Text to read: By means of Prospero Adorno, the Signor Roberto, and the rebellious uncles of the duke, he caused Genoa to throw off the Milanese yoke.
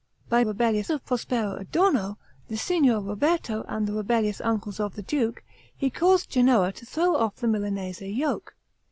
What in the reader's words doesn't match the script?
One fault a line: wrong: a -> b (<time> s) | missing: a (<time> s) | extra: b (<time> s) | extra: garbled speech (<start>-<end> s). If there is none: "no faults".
wrong: means -> rebellious (0.4 s)